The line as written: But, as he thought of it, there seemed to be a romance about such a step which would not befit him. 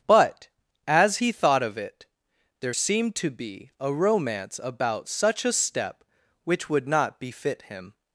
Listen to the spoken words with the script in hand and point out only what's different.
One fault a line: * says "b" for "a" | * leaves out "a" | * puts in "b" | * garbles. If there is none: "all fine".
all fine